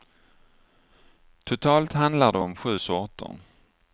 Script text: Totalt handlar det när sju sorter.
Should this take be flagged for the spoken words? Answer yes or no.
yes